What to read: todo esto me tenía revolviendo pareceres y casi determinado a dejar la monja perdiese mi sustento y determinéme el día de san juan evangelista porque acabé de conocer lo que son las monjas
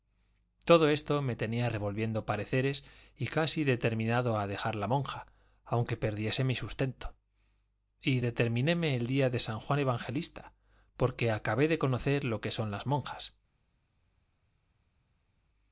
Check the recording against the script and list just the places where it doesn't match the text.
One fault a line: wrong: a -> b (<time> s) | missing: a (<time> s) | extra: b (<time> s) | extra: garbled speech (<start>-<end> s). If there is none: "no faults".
extra: aunque (5.6 s)